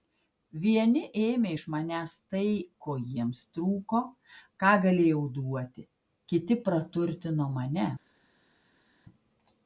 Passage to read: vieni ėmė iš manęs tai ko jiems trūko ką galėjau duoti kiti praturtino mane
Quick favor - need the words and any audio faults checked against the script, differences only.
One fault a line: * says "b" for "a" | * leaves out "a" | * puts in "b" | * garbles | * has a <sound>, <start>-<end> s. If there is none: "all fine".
all fine